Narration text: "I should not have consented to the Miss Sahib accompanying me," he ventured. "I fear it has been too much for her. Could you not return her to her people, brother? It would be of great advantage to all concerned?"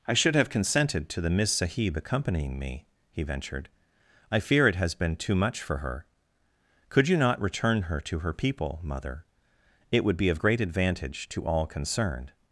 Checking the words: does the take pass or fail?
fail